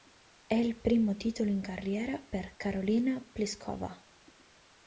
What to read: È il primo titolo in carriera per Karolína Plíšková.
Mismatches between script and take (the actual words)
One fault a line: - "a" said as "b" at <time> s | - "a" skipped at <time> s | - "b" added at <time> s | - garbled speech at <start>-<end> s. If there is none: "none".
none